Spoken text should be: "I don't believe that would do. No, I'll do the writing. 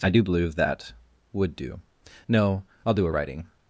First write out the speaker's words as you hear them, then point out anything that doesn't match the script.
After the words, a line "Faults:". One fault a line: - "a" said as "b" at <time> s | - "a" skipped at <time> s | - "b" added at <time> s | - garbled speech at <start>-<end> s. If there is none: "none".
"I do believe that would do. No, I'll do a writing.
Faults:
- "don't" said as "do" at 0.1 s
- "the" said as "a" at 3.1 s